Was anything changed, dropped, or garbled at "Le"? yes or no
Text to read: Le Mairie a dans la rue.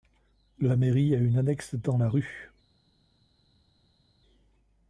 yes